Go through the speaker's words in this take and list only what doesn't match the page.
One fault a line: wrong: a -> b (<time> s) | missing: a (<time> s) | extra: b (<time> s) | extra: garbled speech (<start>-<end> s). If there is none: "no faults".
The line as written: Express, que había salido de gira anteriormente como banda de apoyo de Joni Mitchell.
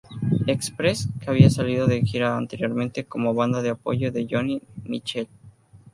no faults